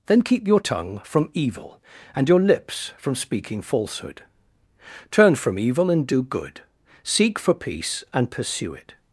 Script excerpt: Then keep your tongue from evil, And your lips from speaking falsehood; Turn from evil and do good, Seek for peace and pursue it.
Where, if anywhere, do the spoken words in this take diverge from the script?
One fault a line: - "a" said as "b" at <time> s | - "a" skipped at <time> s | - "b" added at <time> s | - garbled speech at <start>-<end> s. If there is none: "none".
none